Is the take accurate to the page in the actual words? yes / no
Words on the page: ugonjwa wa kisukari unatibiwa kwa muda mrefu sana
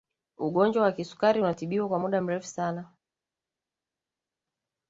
yes